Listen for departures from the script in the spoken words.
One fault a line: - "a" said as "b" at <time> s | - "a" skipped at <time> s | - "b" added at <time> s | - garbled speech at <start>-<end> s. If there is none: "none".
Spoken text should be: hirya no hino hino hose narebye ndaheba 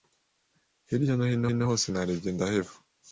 none